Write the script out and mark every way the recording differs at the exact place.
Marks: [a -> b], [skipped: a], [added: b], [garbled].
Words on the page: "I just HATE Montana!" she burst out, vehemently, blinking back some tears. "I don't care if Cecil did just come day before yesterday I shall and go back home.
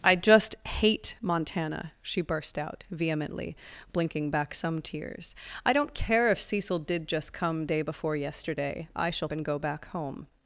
"I just HATE Montana!" she burst out, vehemently, blinking back some tears. "I don't care if Cecil did just come day before yesterday I shall and go back home.